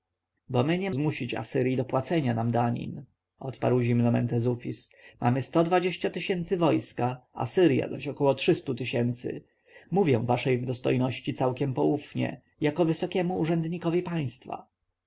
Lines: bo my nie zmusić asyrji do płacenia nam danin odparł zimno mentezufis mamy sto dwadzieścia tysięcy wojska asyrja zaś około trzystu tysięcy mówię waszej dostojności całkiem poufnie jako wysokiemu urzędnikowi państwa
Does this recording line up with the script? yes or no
yes